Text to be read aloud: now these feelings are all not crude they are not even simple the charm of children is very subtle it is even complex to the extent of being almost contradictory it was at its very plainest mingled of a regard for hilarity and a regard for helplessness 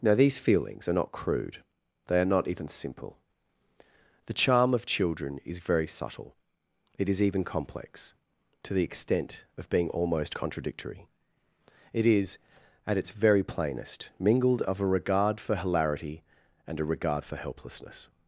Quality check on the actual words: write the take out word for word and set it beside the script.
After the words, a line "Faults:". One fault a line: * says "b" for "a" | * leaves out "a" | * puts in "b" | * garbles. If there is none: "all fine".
now these feelings are not crude they are not even simple the charm of children is very subtle it is even complex to the extent of being almost contradictory it is at its very plainest mingled of a regard for hilarity and a regard for helplessness
Faults:
* leaves out "all"
* says "is" for "was"